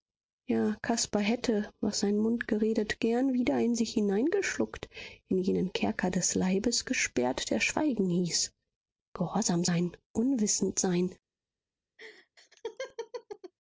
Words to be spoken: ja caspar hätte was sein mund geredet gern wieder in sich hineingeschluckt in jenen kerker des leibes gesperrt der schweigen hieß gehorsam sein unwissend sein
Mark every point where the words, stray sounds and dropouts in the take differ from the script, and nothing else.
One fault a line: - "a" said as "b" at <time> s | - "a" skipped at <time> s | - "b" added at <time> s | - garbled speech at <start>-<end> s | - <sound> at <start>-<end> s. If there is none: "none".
- laugh at 12.0-13.5 s